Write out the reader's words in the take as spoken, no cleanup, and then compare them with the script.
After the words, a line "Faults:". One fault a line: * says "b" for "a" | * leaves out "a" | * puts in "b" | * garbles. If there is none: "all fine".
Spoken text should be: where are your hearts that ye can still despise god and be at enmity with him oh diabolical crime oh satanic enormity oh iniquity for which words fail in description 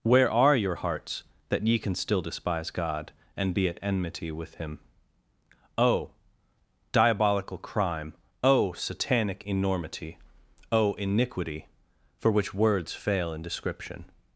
where are your hearts that ye can still despise god and be at enmity with him oh diabolical crime oh satanic enormity oh iniquity for which words fail in description
Faults:
all fine